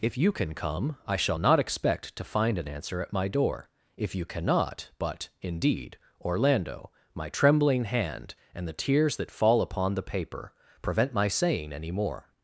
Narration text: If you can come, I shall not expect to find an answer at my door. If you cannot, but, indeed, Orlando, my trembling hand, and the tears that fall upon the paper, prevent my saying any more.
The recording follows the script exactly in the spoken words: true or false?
true